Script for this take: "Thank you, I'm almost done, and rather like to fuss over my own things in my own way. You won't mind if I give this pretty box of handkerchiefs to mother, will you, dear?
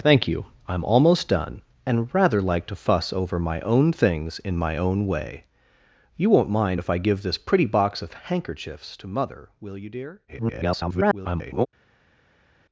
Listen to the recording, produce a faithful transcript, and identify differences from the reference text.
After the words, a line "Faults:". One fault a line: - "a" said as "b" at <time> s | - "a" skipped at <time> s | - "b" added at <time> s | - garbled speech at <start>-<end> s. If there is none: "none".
"Thank you, I'm almost done, and rather like to fuss over my own things in my own way. You won't mind if I give this pretty box of handkerchiefs to mother, will you, dear? [garbled]
Faults:
- garbled speech at 10.3-11.7 s